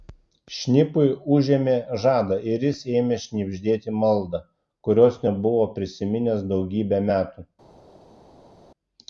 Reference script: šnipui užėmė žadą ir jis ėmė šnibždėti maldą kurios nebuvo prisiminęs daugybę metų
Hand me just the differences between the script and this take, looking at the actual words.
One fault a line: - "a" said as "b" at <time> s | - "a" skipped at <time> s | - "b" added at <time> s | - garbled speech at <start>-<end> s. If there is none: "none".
none